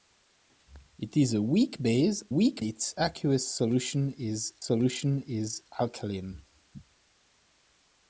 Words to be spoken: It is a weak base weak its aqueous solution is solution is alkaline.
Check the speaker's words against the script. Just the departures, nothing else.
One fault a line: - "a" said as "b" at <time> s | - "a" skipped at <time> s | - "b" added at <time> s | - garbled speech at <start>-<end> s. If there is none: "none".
none